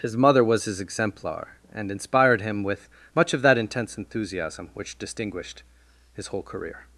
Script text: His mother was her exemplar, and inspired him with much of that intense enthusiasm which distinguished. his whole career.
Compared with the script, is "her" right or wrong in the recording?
wrong